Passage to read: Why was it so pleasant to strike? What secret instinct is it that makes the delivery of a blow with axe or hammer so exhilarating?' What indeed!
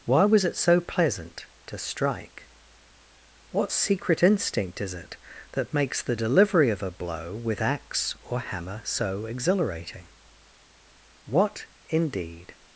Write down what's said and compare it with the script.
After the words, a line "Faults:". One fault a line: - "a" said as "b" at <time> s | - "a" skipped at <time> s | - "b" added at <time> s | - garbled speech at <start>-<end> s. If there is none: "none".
Why was it so pleasant to strike? What secret instinct is it that makes the delivery of a blow with axe or hammer so exhilarating?' What indeed!
Faults:
none